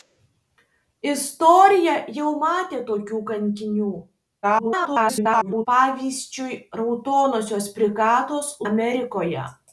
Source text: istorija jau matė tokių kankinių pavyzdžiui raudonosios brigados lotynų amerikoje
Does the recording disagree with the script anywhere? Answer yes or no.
yes